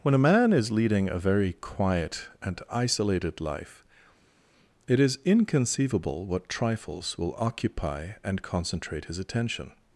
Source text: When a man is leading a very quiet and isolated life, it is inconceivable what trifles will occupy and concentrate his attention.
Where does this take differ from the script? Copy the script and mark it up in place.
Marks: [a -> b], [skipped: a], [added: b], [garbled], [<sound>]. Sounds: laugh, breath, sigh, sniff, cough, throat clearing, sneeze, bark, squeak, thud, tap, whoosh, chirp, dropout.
When a man is leading a very quiet and isolated life, it is inconceivable what trifles will occupy and concentrate his attention.